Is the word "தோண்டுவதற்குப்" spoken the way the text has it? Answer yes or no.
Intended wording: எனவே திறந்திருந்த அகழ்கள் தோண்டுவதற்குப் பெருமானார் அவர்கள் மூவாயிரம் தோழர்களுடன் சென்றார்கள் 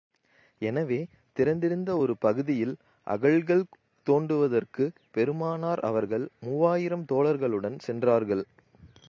yes